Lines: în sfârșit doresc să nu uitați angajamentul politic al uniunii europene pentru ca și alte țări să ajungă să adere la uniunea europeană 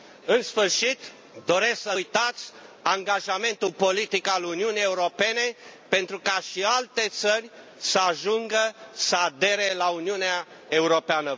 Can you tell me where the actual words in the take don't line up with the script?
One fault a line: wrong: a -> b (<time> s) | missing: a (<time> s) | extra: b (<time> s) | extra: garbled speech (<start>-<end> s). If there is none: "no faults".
missing: nu (1.9 s)